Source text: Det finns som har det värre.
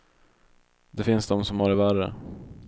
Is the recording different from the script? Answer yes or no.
yes